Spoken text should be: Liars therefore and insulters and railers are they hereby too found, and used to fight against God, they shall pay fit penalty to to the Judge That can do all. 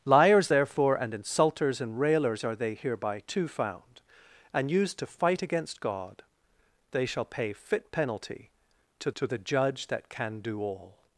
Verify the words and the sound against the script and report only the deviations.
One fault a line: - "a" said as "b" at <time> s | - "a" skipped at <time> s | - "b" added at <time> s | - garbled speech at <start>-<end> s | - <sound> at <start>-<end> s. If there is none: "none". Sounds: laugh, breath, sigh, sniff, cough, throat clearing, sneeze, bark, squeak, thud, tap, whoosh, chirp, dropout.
none